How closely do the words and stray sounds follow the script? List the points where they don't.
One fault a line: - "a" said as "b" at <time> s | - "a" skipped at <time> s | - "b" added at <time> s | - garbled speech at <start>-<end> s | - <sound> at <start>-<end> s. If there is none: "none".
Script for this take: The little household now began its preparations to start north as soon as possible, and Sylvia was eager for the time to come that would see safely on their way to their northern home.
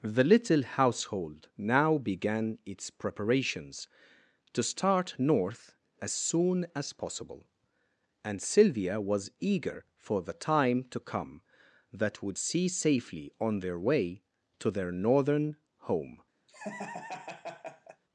- laugh at 16.5-18.0 s